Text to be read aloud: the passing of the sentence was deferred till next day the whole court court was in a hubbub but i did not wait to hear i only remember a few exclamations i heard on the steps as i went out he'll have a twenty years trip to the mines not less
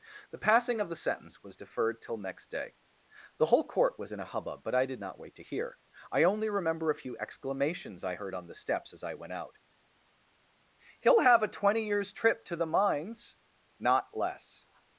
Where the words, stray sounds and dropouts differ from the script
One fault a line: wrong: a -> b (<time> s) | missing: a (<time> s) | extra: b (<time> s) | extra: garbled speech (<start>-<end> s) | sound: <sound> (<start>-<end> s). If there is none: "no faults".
missing: court (4.0 s)